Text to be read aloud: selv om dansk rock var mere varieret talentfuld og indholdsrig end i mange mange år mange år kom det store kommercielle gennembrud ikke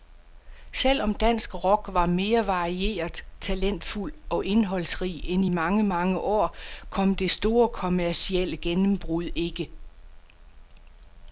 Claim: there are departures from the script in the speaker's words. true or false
true